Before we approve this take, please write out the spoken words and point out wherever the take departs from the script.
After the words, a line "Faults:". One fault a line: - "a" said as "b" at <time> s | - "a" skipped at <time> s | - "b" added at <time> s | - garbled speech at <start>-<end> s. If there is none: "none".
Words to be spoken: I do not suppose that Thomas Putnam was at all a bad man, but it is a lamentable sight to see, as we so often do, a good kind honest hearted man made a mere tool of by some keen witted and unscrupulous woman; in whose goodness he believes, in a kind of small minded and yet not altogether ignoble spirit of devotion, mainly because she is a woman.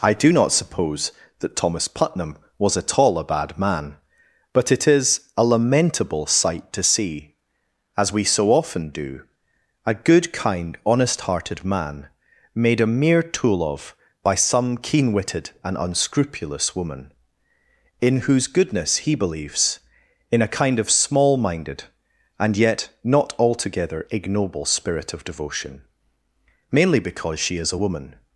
I do not suppose that Thomas Putnam was at all a bad man, but it is a lamentable sight to see, as we so often do, a good kind honest hearted man made a mere tool of by some keen witted and unscrupulous woman; in whose goodness he believes, in a kind of small minded and yet not altogether ignoble spirit of devotion, mainly because she is a woman.
Faults:
none